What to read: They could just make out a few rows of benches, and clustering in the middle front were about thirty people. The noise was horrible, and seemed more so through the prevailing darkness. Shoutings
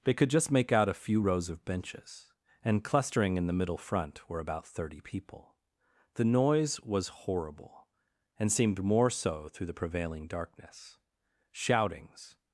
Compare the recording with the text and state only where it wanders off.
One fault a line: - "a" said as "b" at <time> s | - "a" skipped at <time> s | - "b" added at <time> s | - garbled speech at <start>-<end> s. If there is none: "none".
none